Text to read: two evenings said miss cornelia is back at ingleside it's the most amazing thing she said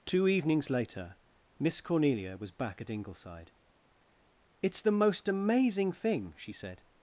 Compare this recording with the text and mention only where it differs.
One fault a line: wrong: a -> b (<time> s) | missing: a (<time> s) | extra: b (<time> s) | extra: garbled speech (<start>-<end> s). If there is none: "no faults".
wrong: said -> later (0.7 s)
wrong: is -> was (2.4 s)